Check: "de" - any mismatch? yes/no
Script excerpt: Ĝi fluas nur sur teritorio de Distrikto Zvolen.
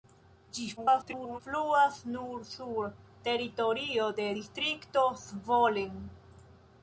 no